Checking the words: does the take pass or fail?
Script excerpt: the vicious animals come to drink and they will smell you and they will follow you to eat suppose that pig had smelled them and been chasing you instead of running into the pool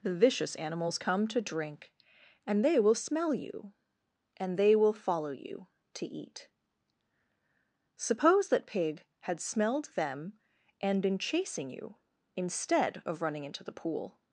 pass